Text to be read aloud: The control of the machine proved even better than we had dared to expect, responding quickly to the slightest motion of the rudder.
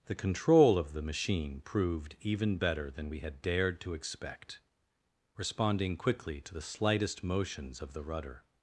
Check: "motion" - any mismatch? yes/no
yes